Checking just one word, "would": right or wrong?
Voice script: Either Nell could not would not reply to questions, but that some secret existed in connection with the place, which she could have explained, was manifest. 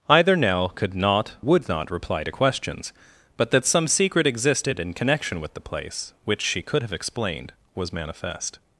right